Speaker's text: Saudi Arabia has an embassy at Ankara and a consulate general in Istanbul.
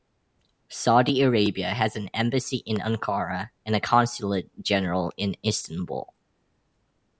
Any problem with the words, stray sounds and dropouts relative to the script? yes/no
yes